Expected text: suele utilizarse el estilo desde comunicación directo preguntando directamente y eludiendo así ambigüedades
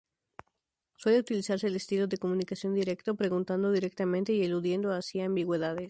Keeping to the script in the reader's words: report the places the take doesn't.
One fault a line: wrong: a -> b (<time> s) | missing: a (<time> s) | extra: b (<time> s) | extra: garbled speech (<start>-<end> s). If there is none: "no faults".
wrong: desde -> de (2.1 s)